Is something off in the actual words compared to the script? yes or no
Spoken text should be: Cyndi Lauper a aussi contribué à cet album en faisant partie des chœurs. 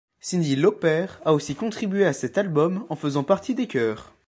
no